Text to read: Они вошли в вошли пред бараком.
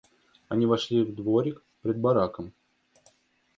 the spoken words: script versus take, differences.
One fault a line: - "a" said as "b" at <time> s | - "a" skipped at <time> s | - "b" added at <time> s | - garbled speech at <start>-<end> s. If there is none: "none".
- "вошли" said as "дворик" at 1.1 s